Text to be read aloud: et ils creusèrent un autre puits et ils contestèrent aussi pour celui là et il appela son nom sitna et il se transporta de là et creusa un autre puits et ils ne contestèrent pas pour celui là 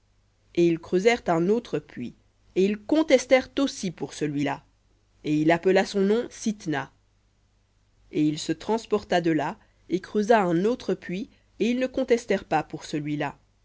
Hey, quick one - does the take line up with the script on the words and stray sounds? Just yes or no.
yes